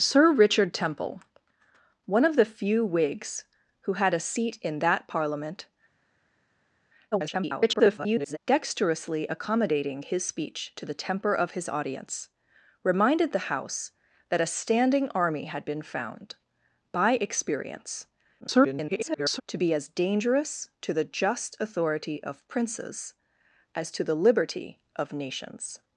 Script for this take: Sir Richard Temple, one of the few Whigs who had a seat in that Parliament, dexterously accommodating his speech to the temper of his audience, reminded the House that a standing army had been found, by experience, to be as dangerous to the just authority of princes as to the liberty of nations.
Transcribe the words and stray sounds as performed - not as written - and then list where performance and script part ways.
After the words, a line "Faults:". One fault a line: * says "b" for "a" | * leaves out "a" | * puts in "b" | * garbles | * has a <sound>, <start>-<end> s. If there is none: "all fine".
Sir Richard Temple, one of the few Whigs who had a seat in that Parliament, [garbled] dexterously accommodating his speech to the temper of his audience, reminded the House that a standing army had been found, by experience, [garbled] to be as dangerous to the just authority of princes as to the liberty of nations.
Faults:
* garbles
* garbles